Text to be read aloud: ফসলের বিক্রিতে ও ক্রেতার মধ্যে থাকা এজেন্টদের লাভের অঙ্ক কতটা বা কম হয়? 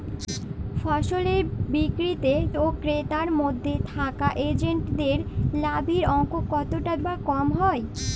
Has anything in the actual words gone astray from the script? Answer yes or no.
no